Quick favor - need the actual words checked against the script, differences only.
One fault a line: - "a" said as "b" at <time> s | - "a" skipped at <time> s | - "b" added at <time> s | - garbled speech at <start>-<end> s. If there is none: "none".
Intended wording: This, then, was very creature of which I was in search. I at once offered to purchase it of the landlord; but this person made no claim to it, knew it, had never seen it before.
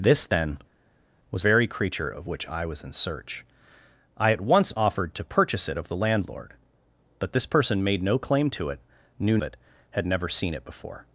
none